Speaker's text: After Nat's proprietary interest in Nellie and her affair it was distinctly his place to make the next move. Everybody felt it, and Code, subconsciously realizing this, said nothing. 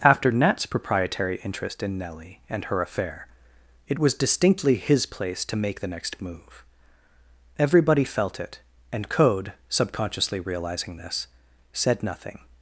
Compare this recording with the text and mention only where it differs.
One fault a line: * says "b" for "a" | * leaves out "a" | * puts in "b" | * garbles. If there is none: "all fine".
all fine